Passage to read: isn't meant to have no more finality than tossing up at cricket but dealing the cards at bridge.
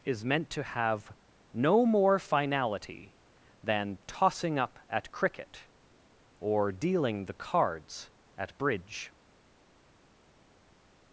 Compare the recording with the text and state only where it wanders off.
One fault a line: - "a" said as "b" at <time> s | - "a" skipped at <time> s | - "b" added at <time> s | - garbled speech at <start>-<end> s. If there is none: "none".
- "isn't" said as "is" at 0.0 s
- "but" said as "or" at 6.4 s